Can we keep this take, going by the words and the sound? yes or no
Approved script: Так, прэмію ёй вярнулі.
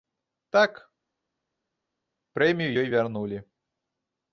yes